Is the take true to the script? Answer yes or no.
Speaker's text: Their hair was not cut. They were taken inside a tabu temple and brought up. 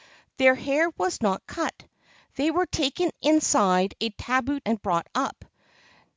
no